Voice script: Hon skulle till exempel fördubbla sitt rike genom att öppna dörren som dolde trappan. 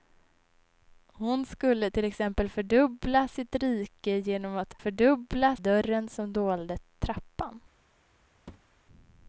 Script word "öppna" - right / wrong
wrong